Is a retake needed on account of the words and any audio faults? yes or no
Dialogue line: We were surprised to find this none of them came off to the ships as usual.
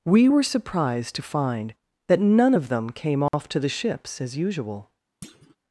yes